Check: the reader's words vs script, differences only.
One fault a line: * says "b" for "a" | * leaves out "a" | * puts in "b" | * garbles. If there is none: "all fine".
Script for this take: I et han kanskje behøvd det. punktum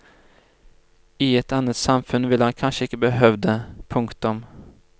* puts in "annet samfunn ville"
* puts in "ikke"